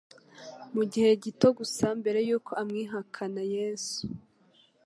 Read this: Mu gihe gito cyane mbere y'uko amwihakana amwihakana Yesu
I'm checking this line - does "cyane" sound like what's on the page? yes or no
no